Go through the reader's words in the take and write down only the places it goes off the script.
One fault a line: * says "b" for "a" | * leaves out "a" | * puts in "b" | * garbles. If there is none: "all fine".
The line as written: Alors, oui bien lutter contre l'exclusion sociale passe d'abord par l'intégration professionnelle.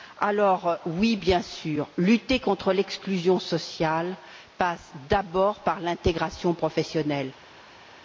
* puts in "sûr"